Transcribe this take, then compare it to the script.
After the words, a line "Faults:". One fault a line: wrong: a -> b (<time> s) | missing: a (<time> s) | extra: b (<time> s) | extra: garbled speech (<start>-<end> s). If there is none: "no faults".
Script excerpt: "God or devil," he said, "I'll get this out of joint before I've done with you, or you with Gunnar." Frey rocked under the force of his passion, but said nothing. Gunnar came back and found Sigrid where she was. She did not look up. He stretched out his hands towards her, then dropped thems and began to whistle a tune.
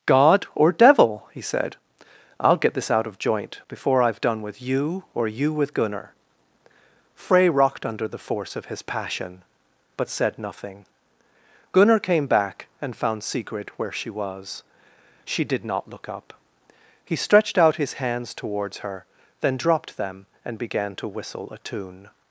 "God or devil," he said, "I'll get this out of joint before I've done with you, or you with Gunnar." Frey rocked under the force of his passion, but said nothing. Gunnar came back and found Sigrid where she was. She did not look up. He stretched out his hands towards her, then dropped them and began to whistle a tune.
Faults:
wrong: thems -> them (20.0 s)